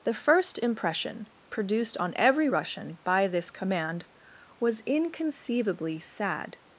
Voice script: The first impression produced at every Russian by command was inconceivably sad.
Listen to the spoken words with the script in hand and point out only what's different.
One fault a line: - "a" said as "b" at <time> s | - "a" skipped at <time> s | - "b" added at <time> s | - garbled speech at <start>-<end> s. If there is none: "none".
- "at" said as "on" at 2.0 s
- "this" added at 3.3 s